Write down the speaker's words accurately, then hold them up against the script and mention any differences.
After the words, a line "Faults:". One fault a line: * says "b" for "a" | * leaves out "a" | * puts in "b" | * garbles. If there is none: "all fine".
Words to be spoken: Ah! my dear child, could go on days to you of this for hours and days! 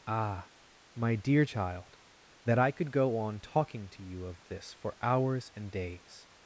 Ah! my dear child, that I could go on talking to you of this for hours and days!
Faults:
* puts in "that I"
* says "talking" for "days"